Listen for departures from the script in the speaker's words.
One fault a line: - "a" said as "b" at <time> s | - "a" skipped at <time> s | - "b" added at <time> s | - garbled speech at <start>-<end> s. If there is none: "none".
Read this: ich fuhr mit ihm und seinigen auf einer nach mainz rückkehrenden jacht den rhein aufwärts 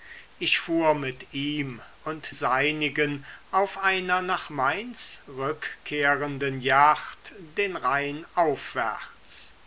none